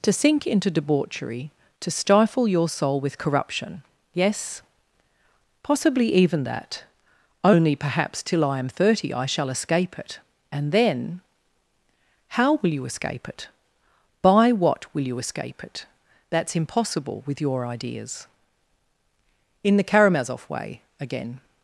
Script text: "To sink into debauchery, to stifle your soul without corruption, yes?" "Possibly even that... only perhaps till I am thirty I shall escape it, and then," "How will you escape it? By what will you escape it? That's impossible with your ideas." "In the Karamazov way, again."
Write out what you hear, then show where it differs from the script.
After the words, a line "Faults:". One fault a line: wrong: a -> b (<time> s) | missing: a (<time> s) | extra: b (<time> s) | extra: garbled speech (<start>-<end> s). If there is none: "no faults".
"To sink into debauchery, to stifle your soul with corruption, yes?" "Possibly even that... only perhaps till I am thirty I shall escape it, and then," "How will you escape it? By what will you escape it? That's impossible with your ideas." "In the Karamazov way, again."
Faults:
wrong: without -> with (3.0 s)